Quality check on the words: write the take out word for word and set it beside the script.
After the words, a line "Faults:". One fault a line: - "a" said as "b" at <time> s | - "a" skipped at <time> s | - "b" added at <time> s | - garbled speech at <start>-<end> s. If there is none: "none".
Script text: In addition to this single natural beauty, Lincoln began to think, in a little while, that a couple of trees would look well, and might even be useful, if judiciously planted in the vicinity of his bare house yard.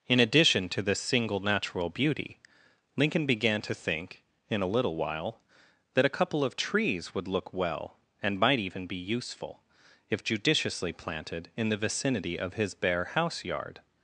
In addition to this single natural beauty, Lincoln began to think, in a little while, that a couple of trees would look well, and might even be useful, if judiciously planted in the vicinity of his bare house yard.
Faults:
none